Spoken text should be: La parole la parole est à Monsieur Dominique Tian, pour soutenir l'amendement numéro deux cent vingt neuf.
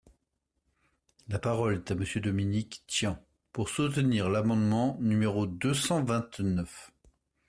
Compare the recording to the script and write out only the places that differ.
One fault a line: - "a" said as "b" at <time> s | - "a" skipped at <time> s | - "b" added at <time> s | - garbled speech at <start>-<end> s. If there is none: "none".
- "la parole" skipped at 1.7 s